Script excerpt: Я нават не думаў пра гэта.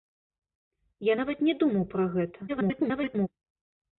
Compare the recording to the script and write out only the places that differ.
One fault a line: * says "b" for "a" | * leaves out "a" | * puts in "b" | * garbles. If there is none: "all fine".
* garbles